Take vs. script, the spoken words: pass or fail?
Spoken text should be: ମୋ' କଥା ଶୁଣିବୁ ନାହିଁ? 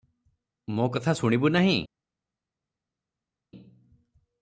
pass